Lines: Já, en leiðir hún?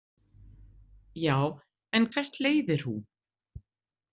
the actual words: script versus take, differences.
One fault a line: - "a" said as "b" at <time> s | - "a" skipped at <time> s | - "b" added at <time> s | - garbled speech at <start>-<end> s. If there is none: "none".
- "hvert" added at 2.1 s